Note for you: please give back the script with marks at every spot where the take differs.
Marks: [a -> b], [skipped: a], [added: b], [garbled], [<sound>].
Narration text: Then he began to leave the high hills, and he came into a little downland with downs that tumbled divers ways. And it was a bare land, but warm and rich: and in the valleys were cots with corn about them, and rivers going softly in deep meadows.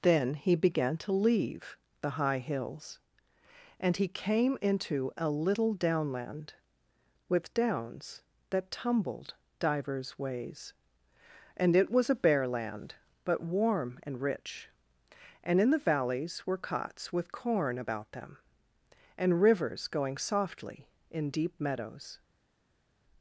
Then he began to leave the high hills, and he came into a little downland with downs that tumbled divers ways. And it was a bare land, but warm and rich: and in the valleys were cots with corn about them, and rivers going softly in deep meadows.